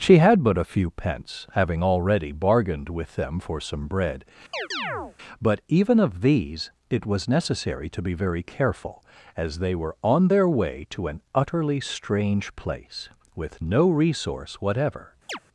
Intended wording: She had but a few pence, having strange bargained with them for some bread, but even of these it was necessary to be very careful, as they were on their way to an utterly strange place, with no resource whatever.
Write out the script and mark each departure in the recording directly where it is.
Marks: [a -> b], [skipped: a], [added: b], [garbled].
She had but a few pence, having [strange -> already] bargained with them for some bread, but even of these it was necessary to be very careful, as they were on their way to an utterly strange place, with no resource whatever.